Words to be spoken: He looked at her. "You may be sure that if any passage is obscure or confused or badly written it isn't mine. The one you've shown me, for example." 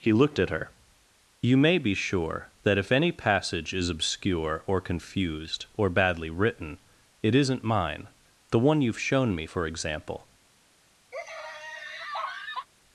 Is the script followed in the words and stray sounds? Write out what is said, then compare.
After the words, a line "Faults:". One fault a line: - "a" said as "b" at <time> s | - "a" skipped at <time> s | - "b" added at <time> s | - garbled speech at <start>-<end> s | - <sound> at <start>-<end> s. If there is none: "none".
He looked at her. "You may be sure that if any passage is obscure or confused or badly written it isn't mine. The one you've shown me, for example."
Faults:
- laugh at 11.1-12.7 s